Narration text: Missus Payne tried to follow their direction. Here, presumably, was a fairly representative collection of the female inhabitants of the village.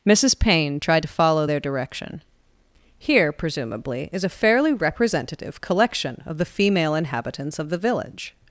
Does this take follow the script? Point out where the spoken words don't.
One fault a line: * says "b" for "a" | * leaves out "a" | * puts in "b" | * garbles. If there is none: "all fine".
* says "is" for "was"